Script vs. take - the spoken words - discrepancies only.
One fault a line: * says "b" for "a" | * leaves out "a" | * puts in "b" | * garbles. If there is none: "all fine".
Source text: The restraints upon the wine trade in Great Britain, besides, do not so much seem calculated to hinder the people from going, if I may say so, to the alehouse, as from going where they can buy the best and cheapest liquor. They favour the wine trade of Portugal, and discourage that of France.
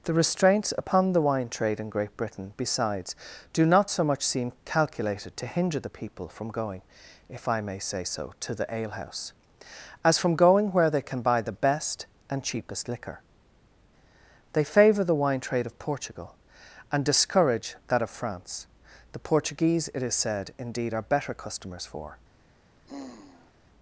* puts in "The Portuguese it is said indeed are better customers for"